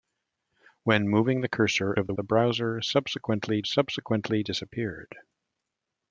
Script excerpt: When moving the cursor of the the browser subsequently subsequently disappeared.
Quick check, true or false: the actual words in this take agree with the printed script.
true